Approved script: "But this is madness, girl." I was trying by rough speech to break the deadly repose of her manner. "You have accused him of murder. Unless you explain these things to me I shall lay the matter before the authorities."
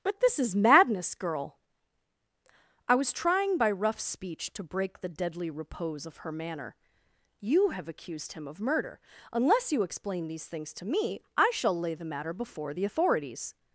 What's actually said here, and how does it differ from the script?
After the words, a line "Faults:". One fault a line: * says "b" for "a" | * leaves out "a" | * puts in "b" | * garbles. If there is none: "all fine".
"But this is madness, girl." I was trying by rough speech to break the deadly repose of her manner. "You have accused him of murder. Unless you explain these things to me I shall lay the matter before the authorities."
Faults:
all fine